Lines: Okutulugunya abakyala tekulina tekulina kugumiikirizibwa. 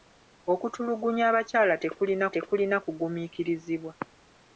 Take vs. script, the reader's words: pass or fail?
pass